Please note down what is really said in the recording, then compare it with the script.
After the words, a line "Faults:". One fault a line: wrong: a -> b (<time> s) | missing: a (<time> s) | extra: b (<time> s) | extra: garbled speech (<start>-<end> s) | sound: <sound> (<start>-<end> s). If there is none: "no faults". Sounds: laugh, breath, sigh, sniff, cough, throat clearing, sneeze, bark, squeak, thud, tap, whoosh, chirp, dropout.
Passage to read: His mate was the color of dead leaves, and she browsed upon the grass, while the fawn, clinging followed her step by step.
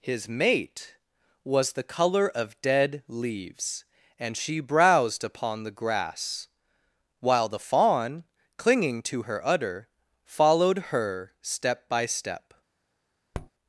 His mate was the color of dead leaves, and she browsed upon the grass, while the fawn, clinging to her udder, followed her step by step.
Faults:
extra: to her udder (9.0 s)
sound: tap (13.3-13.5 s)